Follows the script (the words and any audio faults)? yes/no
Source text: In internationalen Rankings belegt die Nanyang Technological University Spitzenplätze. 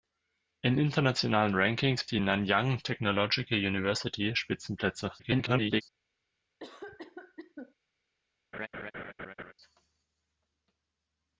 no